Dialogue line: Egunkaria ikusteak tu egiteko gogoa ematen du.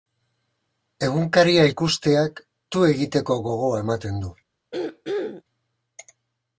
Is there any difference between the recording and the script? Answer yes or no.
no